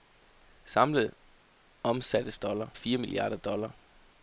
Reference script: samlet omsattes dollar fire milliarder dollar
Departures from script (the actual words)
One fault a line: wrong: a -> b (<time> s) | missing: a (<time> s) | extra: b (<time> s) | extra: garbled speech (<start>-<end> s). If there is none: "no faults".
no faults